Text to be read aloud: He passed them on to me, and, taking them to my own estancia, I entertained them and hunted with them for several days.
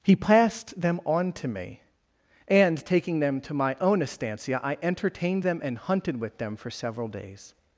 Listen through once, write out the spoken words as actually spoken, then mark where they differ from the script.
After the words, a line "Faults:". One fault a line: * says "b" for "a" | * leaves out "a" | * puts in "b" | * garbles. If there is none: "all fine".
He passed them on to me, and, taking them to my own estancia, I entertained them and hunted with them for several days.
Faults:
all fine